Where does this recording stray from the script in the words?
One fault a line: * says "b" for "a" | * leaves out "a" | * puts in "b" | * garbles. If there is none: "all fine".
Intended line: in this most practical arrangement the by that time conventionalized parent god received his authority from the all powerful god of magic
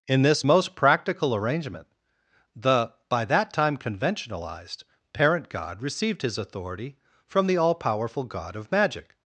all fine